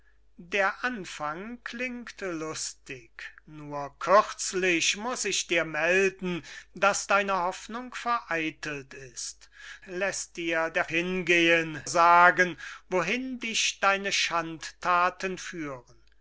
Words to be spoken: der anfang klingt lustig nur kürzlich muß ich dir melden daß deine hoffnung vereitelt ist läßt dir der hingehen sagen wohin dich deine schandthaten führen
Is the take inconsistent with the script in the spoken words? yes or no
no